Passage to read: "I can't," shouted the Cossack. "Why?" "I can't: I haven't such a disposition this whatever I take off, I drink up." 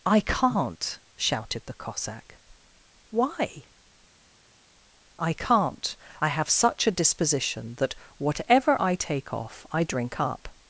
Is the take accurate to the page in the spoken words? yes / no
no